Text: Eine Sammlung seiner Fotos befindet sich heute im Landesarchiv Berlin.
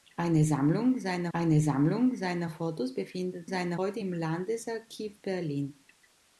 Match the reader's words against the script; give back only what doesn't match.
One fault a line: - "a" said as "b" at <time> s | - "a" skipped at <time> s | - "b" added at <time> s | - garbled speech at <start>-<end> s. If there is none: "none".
- "eine Sammlung seiner" added at 1.3 s
- "sich" said as "seiner" at 3.5 s